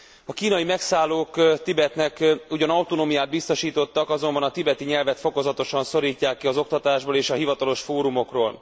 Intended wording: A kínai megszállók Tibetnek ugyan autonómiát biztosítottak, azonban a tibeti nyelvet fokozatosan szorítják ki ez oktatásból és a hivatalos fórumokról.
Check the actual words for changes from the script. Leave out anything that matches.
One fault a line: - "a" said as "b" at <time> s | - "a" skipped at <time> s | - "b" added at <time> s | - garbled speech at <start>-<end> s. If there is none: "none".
- "ez" said as "az" at 6.5 s